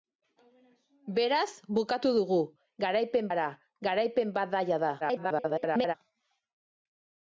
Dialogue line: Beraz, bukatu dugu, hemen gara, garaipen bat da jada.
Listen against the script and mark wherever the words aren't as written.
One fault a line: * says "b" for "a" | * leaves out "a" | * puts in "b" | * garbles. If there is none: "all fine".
* says "garaipen" for "hemen"
* garbles